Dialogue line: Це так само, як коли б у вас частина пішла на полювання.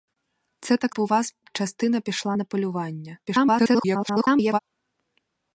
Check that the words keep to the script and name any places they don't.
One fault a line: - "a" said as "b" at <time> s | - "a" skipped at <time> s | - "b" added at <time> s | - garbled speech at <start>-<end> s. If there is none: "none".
- "само як коли" skipped at 0.9 s
- garbled speech at 3.3-4.6 s